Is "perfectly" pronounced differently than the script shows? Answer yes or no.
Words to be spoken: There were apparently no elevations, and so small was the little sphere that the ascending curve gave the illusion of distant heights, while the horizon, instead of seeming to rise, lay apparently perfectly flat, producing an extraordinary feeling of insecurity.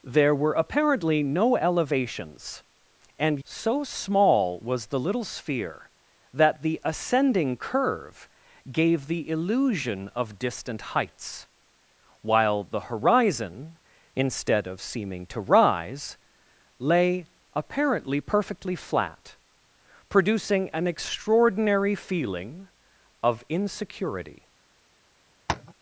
no